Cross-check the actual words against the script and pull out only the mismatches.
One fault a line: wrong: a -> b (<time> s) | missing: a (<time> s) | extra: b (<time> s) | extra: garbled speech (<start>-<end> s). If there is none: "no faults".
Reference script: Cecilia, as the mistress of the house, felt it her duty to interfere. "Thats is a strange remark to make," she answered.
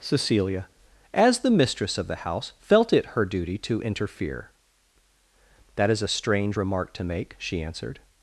wrong: Thats -> That (5.8 s)